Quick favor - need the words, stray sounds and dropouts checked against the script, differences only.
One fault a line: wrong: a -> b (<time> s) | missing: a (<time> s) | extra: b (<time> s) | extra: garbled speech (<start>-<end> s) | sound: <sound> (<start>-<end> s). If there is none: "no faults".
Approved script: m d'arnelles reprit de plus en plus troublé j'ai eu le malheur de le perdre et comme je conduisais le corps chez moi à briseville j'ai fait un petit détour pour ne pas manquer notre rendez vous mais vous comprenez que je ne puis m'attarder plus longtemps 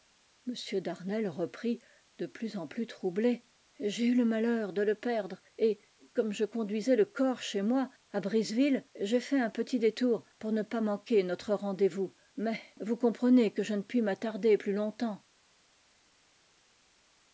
no faults